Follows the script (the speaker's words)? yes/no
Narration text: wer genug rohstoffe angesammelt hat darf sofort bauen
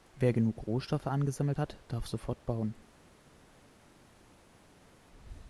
yes